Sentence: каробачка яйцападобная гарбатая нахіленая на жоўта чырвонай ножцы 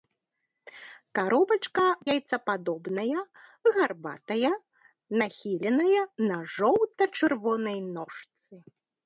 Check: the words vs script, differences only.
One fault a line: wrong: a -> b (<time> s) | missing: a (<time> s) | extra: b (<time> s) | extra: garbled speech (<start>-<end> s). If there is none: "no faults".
no faults